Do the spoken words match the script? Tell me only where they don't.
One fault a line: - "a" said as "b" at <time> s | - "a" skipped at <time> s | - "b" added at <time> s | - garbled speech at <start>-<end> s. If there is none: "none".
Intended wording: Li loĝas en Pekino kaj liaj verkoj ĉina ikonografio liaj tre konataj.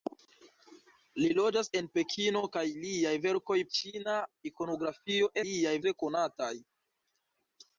none